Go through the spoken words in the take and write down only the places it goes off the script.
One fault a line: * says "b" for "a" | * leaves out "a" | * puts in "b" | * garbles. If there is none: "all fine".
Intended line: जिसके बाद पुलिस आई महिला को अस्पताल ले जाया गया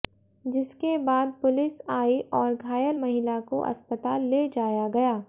* puts in "और घायल"